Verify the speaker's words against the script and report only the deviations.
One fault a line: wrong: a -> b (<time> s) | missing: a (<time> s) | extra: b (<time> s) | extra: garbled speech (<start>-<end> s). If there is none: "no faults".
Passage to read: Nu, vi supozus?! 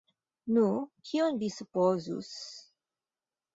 extra: kion (1.1 s)